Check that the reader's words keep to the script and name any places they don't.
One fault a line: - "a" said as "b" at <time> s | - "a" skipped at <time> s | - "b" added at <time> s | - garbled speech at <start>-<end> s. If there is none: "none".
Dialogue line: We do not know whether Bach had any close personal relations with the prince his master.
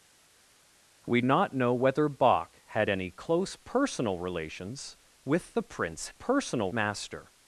- "do" skipped at 1.2 s
- "his" said as "personal" at 6.1 s